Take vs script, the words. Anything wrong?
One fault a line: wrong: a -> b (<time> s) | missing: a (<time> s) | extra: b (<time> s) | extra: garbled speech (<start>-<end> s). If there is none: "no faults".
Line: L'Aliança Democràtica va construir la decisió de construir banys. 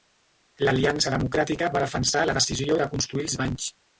wrong: construir -> defensar (1.9 s)
extra: els (3.3 s)